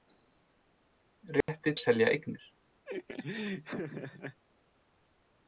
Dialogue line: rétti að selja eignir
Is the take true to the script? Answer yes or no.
yes